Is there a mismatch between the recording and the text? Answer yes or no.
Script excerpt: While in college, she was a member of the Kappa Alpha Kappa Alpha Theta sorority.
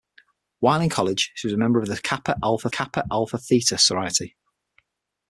no